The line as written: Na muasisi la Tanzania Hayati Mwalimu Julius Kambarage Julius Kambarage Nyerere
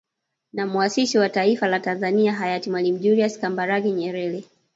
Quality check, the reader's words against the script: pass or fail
fail